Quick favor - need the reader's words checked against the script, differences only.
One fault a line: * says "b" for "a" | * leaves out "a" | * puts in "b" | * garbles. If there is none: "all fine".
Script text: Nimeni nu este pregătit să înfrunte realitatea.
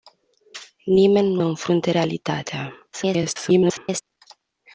* leaves out "este pregătit să"
* garbles